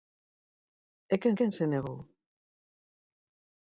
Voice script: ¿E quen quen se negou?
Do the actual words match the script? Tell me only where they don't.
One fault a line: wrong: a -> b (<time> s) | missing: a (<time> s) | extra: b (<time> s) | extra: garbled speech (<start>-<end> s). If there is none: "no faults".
no faults